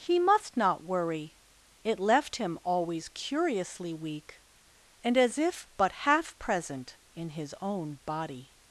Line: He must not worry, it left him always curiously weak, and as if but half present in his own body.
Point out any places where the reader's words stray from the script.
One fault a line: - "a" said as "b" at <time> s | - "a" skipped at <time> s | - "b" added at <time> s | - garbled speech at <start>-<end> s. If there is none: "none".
none